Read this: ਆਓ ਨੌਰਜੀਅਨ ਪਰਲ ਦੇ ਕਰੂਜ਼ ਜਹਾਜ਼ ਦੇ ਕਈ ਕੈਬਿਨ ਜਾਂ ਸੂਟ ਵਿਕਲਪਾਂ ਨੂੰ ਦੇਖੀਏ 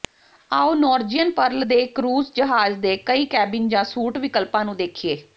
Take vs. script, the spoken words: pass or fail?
pass